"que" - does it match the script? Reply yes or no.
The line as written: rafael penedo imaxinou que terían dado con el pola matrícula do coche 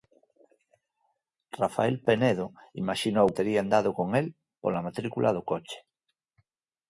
no